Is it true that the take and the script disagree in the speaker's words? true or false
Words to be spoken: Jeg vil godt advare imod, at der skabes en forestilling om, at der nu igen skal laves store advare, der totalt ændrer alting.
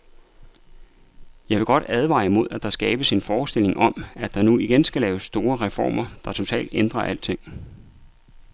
true